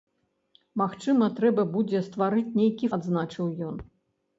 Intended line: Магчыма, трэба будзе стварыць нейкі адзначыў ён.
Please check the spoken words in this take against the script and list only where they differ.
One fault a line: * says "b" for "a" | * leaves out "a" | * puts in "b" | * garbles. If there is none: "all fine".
all fine